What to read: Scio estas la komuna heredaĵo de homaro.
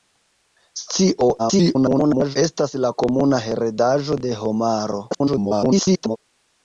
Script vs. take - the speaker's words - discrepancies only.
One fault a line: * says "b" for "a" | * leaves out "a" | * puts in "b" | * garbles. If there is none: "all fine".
* garbles
* garbles